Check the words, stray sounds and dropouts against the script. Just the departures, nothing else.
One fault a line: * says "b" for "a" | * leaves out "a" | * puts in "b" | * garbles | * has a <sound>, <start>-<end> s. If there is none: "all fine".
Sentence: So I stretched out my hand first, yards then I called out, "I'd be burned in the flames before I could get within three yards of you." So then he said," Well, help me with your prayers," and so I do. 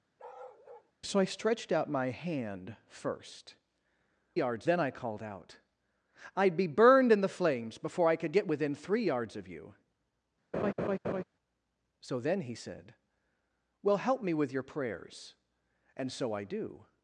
* has a bark, 0.2-0.9 s
* has a laugh, 10.5-11.2 s